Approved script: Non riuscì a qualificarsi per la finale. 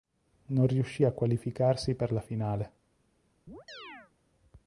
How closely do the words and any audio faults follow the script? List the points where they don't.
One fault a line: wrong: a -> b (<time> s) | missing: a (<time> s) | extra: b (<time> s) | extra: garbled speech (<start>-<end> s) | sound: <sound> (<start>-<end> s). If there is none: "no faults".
sound: chirp (3.5-4.1 s)